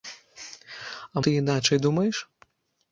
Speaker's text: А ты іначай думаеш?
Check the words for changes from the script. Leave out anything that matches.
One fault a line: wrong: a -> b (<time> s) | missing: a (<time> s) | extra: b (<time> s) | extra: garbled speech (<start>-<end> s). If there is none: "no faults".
no faults